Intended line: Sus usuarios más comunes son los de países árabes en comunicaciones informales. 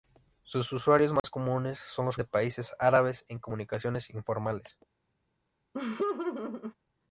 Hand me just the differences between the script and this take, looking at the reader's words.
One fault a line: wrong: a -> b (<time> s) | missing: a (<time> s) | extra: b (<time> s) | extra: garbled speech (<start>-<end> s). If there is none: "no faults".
no faults